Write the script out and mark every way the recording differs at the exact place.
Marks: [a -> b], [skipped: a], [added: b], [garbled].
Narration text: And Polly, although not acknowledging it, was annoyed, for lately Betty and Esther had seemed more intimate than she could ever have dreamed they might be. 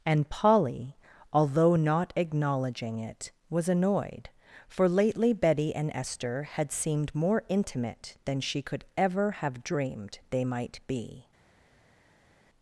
And Polly, although not acknowledging it, was annoyed, for lately Betty and Esther had seemed more intimate than she could ever have dreamed they might be.